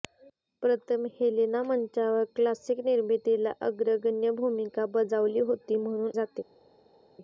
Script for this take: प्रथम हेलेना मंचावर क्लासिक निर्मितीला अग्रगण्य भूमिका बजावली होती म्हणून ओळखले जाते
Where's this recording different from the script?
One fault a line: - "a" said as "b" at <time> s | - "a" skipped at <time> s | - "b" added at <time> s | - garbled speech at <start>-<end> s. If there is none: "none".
- "ओळखले" skipped at 6.1 s